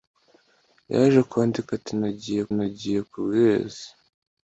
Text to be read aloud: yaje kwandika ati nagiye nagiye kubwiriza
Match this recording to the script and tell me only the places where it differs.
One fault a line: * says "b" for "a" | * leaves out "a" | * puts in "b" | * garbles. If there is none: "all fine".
all fine